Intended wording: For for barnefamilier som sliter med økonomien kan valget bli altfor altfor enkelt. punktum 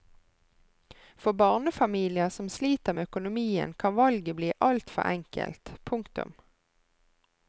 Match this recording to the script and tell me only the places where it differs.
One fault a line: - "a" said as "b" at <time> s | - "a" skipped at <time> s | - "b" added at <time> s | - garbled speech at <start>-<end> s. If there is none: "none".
- "for" skipped at 1.3 s
- "altfor" skipped at 5.0 s